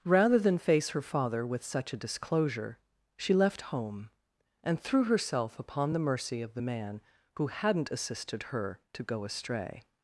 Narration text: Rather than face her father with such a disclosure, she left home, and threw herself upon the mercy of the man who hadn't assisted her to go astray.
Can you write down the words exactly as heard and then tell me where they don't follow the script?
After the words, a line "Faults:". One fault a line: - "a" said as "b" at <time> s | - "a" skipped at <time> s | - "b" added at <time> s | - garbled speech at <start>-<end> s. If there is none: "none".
Rather than face her father with such a disclosure, she left home, and threw herself upon the mercy of the man who hadn't assisted her to go astray.
Faults:
none